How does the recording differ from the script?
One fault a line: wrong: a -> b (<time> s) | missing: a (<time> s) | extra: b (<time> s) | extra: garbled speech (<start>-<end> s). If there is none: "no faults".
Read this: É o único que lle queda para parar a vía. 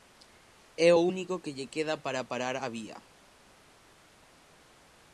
no faults